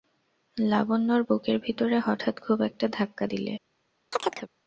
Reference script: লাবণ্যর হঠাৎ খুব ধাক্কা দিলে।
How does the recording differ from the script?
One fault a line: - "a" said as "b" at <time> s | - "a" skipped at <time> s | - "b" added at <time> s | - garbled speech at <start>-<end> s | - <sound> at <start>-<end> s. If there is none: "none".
- "বুকের ভিতরে" added at 1.2 s
- "একটা" added at 2.6 s
- chirp at 4.1-4.5 s